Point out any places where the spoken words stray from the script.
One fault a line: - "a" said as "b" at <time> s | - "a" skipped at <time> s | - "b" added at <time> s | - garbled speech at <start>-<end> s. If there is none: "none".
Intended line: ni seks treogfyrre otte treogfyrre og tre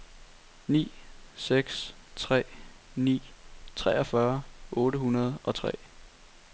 - "tre ni" added at 2.1 s
- "treogfyrre" said as "hundrede" at 5.0 s